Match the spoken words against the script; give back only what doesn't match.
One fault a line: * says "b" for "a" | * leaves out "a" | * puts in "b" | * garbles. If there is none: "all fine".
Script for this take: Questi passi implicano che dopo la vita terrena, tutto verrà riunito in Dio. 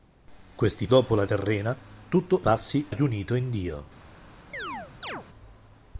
* leaves out "passi implicano che"
* leaves out "vita"
* says "passi" for "verrà"